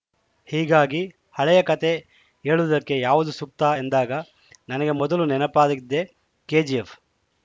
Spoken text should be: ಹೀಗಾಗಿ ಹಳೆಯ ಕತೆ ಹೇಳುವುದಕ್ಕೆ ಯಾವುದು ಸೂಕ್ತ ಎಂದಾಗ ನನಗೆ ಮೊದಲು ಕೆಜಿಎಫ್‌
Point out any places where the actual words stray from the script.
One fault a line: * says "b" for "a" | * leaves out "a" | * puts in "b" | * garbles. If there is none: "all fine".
* puts in "ನೆನಪಾಗಿದ್ದೇ"